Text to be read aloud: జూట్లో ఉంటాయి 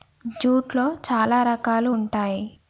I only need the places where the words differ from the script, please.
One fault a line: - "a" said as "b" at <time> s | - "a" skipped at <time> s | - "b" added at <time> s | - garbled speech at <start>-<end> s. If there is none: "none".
- "చాలా రకాలు" added at 1.0 s